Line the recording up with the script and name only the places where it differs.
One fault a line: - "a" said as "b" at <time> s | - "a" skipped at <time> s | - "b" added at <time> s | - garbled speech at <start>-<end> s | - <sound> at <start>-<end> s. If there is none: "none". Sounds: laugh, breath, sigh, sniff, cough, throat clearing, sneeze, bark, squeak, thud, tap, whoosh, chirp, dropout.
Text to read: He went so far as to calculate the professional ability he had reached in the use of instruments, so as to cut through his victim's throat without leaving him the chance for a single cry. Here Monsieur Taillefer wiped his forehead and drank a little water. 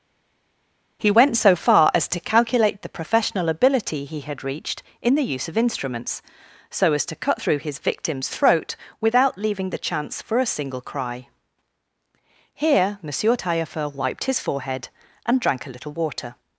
- "him" skipped at 9.7 s